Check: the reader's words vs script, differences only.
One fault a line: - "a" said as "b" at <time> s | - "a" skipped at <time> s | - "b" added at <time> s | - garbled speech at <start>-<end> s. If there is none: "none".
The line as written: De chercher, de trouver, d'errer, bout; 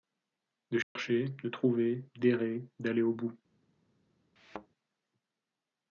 - "d'aller au" added at 2.8 s